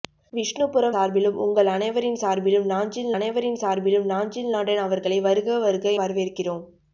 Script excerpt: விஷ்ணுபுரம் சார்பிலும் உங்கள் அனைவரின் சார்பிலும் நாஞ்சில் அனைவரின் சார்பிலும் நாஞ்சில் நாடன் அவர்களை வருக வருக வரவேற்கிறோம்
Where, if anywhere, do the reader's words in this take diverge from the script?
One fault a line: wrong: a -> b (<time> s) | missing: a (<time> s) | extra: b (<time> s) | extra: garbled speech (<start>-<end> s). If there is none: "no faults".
no faults